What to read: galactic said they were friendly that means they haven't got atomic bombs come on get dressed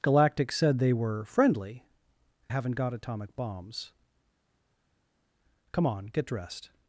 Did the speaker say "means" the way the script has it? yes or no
no